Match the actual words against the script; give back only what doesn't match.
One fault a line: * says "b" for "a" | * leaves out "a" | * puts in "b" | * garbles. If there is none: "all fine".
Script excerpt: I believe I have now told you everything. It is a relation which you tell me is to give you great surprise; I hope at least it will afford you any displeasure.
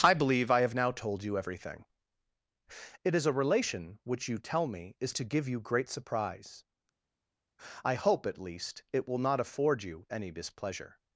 * puts in "not"